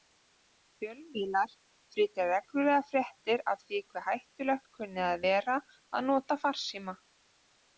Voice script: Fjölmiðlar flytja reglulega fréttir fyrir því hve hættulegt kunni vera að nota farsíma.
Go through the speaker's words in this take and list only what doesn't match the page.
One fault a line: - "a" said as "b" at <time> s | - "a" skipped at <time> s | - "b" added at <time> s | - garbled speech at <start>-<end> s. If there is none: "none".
- "fyrir" said as "af" at 3.5 s
- "að" added at 5.1 s